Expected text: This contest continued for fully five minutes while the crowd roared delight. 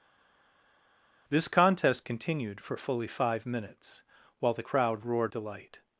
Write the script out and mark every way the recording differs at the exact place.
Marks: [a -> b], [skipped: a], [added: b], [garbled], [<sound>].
This contest continued for fully five minutes while the crowd roared delight.